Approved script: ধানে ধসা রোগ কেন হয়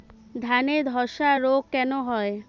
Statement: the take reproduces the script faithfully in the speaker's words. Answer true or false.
true